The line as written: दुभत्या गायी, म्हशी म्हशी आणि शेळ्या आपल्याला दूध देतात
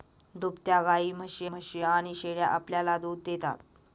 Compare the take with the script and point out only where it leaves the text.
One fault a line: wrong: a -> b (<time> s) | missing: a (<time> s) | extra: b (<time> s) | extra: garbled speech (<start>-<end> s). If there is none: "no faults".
no faults